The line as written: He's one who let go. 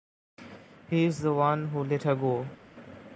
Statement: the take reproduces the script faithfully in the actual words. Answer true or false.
false